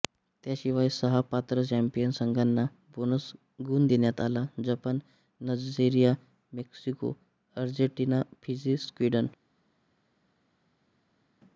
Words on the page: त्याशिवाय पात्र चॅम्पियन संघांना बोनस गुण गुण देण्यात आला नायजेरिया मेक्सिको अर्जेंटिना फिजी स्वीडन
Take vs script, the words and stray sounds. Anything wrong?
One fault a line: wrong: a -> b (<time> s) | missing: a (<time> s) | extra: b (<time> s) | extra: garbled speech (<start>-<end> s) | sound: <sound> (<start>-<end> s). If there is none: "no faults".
extra: सहा (0.9 s)
missing: गुण (3.9 s)
extra: जपान (4.6 s)